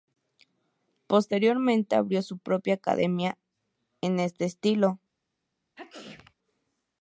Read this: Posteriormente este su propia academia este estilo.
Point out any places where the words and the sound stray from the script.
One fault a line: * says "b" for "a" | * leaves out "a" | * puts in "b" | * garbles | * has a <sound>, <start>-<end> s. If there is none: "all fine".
* says "abrió" for "este"
* puts in "en"
* has a sneeze, 5.8-6.3 s